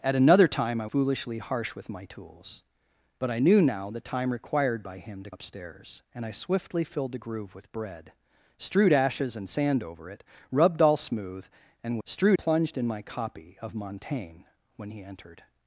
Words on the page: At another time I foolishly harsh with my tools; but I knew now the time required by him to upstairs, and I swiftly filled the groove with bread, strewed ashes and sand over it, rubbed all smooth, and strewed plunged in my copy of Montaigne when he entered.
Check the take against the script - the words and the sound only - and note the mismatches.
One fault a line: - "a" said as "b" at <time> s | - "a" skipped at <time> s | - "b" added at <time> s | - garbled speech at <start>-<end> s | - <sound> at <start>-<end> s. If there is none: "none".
none